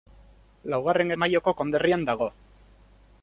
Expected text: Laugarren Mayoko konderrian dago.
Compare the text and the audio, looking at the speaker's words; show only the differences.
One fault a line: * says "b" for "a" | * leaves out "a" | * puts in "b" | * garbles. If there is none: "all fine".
all fine